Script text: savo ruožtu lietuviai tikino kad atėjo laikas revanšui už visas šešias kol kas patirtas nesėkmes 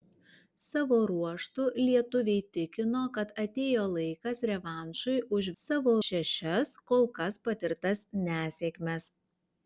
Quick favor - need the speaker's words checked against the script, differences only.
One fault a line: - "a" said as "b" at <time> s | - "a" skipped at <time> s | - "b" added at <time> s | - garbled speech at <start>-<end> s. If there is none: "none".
- "visas" said as "savo" at 5.6 s